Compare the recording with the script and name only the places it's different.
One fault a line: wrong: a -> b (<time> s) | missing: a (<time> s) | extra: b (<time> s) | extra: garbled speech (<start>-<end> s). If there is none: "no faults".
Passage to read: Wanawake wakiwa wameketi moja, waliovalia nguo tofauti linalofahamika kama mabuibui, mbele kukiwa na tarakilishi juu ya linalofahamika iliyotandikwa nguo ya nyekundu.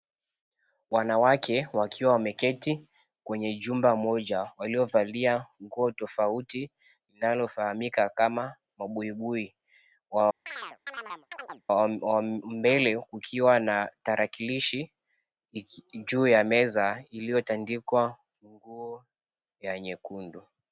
extra: kwenye jumba (3.2 s)
wrong: linalofahamika -> meza (16.4 s)